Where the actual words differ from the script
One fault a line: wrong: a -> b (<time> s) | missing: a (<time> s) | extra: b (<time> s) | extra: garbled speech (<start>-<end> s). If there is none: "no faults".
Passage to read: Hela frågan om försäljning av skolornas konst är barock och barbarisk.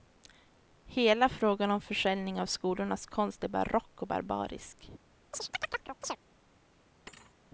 no faults